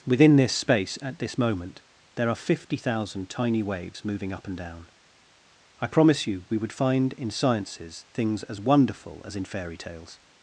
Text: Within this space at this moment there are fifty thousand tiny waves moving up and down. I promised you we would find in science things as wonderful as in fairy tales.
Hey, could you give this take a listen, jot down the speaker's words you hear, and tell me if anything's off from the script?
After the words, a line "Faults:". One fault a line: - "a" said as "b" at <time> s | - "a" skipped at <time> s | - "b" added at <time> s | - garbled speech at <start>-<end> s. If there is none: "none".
Within this space at this moment there are fifty thousand tiny waves moving up and down. I promise you we would find in sciences things as wonderful as in fairy tales.
Faults:
- "promised" said as "promise" at 5.9 s
- "science" said as "sciences" at 7.3 s